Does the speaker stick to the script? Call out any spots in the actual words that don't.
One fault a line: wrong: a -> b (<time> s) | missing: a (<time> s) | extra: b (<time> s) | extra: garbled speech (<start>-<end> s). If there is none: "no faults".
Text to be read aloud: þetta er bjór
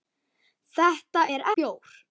no faults